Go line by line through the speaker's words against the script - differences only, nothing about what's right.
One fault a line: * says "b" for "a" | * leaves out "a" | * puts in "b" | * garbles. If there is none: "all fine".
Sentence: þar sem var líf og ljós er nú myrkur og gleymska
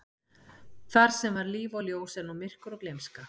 all fine